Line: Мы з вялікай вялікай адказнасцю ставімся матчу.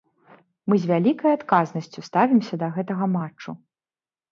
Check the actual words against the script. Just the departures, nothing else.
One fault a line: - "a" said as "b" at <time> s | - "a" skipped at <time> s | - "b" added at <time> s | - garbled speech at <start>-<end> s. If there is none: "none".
- "вялікай" skipped at 1.3 s
- "да гэтага" added at 2.6 s